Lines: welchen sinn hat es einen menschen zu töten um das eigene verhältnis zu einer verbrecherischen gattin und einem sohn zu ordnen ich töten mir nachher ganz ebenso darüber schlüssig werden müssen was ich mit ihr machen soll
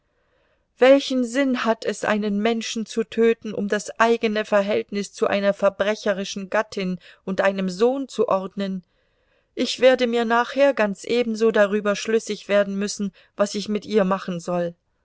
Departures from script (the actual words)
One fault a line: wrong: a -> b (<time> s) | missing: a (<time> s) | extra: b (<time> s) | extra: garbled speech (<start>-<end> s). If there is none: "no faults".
wrong: töten -> werde (9.8 s)